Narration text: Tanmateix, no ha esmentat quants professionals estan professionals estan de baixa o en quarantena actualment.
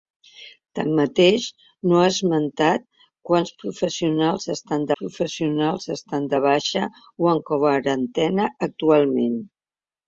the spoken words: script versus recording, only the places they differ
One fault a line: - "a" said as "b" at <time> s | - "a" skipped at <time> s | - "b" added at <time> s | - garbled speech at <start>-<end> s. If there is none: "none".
none